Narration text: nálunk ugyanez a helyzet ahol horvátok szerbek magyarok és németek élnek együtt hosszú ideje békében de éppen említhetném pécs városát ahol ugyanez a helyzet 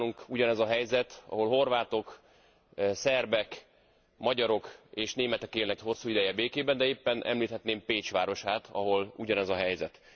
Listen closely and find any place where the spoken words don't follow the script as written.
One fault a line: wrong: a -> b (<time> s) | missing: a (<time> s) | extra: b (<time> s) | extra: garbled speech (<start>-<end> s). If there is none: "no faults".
missing: együtt (5.8 s)